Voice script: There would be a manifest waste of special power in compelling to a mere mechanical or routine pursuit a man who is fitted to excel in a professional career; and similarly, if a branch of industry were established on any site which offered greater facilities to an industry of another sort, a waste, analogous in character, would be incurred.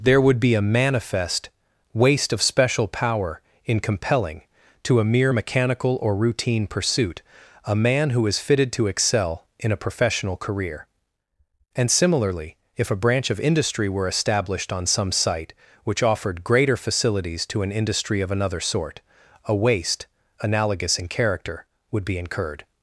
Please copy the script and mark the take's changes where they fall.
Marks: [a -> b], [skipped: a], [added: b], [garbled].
There would be a manifest waste of special power in compelling to a mere mechanical or routine pursuit a man who is fitted to excel in a professional career; and similarly, if a branch of industry were established on [any -> some] site which offered greater facilities to an industry of another sort, a waste, analogous in character, would be incurred.